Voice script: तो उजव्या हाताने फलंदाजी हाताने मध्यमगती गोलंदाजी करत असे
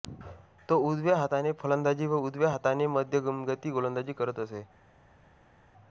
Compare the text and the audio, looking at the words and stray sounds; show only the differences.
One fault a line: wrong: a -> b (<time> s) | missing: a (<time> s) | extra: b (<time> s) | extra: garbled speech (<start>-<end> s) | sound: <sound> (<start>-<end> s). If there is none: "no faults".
extra: व उजव्या (2.1 s)